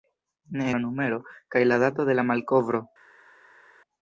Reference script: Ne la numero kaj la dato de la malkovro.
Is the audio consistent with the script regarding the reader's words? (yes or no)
yes